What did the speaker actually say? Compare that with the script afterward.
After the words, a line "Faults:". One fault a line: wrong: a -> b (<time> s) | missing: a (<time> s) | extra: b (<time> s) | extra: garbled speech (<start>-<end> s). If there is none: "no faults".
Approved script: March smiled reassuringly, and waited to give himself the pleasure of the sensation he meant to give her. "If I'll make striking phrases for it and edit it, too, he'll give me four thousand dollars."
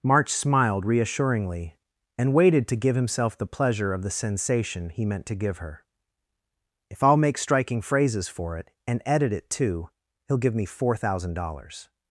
March smiled reassuringly, and waited to give himself the pleasure of the sensation he meant to give her. "If I'll make striking phrases for it and edit it, too, he'll give me four thousand dollars."
Faults:
no faults